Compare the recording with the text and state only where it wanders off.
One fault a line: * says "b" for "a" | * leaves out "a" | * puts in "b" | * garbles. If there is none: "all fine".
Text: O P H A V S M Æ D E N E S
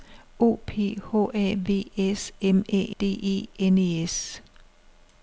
all fine